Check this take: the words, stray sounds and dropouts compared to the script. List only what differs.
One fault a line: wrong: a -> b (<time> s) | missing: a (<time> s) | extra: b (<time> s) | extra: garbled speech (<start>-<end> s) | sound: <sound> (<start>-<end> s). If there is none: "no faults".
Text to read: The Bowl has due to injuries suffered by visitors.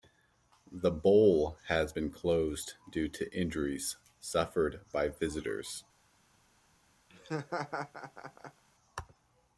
extra: been closed (1.9 s)
sound: laugh (7.1-8.6 s)